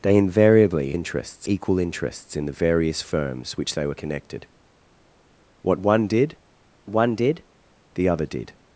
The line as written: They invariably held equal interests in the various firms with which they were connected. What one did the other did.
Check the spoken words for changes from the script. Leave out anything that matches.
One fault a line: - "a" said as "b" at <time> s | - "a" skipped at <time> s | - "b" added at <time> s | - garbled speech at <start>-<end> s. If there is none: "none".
- "held" said as "interests" at 0.9 s
- "with" skipped at 3.6 s
- "one did" added at 6.9 s